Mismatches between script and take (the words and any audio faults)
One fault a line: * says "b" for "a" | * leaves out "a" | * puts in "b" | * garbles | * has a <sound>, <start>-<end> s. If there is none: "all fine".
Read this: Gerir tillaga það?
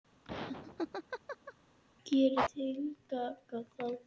* has a laugh, 0.2-1.5 s